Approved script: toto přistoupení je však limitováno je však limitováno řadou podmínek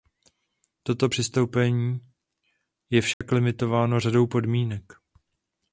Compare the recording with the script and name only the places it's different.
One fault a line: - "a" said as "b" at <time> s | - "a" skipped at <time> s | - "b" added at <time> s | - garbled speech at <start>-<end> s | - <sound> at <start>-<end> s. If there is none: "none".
- dropout at 3.1-3.2 s
- "je však limitováno" skipped at 4.0 s